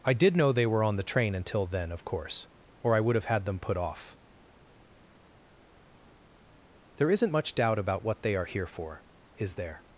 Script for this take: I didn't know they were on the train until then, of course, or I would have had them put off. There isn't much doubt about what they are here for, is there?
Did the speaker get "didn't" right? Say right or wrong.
wrong